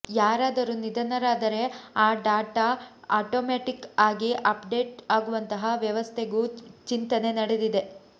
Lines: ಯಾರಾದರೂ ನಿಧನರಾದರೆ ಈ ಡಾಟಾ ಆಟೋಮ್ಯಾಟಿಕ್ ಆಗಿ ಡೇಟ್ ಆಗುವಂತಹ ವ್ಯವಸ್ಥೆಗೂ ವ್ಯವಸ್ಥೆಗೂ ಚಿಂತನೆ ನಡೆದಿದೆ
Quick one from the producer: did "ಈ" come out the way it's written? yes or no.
no